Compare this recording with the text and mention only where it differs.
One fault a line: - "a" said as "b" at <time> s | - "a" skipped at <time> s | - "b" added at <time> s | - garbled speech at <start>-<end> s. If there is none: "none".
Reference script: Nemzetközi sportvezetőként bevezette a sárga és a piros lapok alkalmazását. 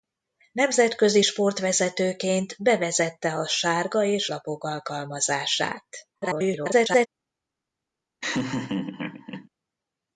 - "a piros" skipped at 4.3 s
- garbled speech at 6.1-7.1 s